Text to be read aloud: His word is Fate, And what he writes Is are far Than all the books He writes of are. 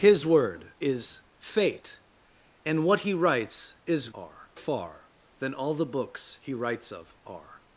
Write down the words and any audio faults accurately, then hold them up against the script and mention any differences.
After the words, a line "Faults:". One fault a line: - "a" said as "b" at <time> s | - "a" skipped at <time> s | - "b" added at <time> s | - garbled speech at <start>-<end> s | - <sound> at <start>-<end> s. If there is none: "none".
His word is Fate, And what he writes Is are far Than all the books He writes of are.
Faults:
none